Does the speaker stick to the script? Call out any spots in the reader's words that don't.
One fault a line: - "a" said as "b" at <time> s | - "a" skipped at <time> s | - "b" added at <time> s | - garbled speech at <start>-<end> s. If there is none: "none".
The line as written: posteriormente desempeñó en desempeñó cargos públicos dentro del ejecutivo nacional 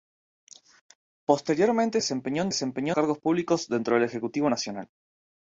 none